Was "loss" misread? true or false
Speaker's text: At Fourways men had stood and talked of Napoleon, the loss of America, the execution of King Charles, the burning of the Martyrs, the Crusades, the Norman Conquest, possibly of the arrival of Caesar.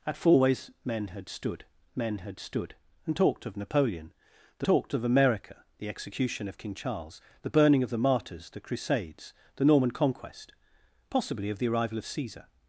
true